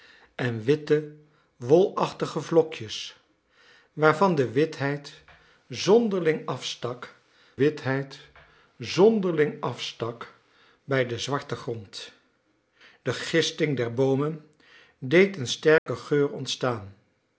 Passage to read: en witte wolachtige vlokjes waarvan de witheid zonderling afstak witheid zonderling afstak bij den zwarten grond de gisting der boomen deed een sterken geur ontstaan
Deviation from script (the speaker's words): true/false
false